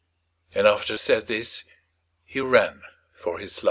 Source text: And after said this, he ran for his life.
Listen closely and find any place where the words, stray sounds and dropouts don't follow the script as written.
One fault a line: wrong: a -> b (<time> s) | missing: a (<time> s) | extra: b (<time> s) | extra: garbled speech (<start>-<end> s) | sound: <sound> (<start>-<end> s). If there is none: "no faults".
no faults